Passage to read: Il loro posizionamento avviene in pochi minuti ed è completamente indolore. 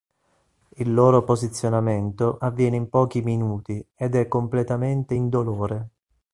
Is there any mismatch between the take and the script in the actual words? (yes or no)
no